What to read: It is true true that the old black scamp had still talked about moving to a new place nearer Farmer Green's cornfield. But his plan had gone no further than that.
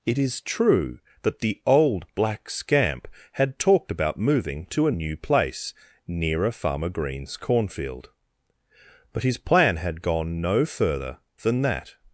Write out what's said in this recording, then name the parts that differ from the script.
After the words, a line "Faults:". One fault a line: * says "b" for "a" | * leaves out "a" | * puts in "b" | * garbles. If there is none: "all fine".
It is true that the old black scamp had talked about moving to a new place nearer Farmer Green's cornfield. But his plan had gone no further than that.
Faults:
* leaves out "true"
* leaves out "still"